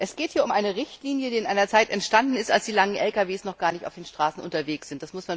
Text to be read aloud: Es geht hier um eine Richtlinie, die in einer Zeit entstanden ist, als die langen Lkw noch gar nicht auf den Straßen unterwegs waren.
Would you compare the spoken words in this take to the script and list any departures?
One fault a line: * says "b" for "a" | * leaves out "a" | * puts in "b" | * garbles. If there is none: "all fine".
all fine